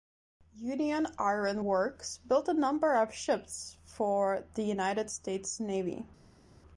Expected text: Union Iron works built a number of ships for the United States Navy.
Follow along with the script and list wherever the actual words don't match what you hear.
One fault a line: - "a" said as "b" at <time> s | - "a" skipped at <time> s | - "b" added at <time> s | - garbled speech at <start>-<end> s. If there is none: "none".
none